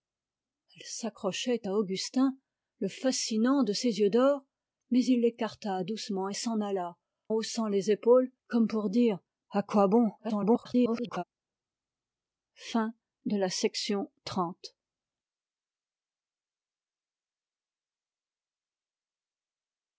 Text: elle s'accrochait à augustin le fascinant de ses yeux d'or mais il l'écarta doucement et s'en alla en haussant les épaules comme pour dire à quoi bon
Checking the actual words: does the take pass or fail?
fail